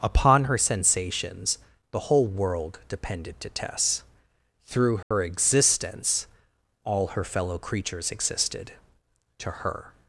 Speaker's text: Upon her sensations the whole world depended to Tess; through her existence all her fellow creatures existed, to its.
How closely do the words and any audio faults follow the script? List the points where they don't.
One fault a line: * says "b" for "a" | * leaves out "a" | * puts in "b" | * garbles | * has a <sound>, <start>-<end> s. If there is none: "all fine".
* has a dropout, 5.0-5.1 s
* says "her" for "its"